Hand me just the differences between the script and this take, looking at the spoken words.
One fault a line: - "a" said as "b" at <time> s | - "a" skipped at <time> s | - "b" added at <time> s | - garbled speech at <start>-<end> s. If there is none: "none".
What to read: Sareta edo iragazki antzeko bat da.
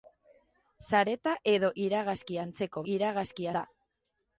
- "bat" said as "iragazki" at 2.9 s